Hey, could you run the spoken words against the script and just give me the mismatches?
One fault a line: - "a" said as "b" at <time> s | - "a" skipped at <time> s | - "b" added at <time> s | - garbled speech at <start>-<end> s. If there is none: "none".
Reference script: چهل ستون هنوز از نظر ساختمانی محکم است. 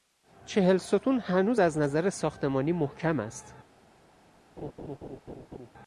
none